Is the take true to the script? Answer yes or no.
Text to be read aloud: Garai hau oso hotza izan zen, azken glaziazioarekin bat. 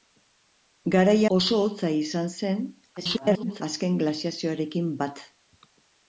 no